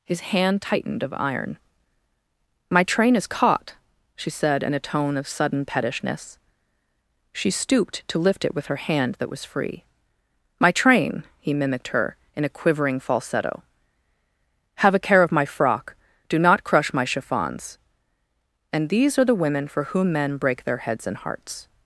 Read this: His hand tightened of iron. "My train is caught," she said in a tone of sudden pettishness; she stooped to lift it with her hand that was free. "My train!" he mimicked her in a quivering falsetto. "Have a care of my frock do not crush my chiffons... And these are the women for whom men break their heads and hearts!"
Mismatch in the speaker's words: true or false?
false